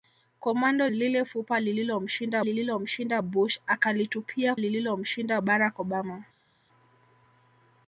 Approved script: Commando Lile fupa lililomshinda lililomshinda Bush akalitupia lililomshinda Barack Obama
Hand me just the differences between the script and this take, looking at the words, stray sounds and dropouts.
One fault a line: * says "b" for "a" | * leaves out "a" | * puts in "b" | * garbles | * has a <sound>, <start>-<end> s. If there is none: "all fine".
all fine